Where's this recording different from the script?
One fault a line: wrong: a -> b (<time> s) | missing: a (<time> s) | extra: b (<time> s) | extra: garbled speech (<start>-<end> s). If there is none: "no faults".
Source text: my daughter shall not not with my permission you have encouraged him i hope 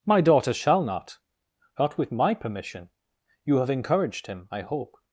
no faults